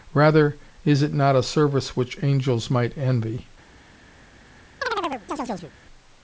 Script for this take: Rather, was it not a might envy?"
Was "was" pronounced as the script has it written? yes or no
no